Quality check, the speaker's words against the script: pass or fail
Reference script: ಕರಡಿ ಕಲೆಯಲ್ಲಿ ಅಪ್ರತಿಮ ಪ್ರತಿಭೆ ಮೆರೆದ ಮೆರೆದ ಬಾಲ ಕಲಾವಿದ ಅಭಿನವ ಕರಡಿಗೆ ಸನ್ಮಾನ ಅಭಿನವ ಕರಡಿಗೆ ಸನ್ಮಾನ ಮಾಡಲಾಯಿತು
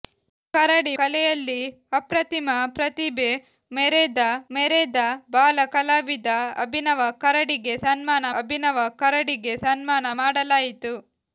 pass